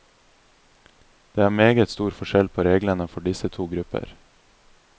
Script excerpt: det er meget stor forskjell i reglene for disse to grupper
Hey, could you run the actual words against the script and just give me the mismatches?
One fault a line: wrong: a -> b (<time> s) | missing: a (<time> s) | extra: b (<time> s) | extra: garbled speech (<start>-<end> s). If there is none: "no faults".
wrong: i -> på (2.5 s)